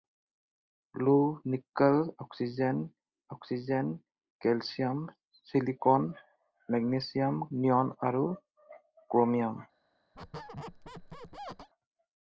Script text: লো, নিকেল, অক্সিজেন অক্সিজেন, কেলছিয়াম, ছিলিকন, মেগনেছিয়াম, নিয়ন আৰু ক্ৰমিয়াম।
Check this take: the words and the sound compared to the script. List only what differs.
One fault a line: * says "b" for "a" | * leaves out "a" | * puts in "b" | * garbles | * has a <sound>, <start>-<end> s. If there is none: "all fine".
* has a squeak, 10.1-11.7 s